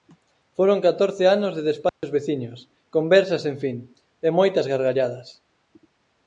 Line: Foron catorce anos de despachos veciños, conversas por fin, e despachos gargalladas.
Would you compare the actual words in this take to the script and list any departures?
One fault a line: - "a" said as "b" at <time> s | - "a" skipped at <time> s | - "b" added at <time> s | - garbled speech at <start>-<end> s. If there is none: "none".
- "por" said as "sen" at 3.4 s
- "despachos" said as "moitas" at 4.4 s